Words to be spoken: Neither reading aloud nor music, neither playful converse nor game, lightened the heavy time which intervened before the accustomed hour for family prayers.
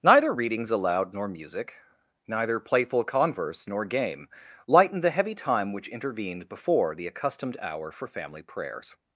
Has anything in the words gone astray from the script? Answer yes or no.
yes